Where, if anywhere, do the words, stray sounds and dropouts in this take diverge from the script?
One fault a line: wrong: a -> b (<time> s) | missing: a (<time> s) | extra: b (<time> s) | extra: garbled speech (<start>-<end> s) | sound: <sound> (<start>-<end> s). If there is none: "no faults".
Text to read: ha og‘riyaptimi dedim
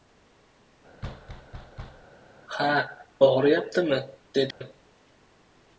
sound: thud (1.0-2.1 s)
sound: dropout (4.5-4.6 s)